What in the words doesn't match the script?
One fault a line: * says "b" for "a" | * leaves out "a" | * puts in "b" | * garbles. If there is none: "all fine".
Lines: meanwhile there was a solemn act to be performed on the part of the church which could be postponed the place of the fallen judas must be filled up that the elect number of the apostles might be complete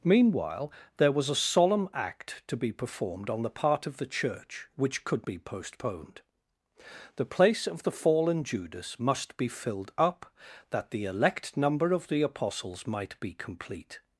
all fine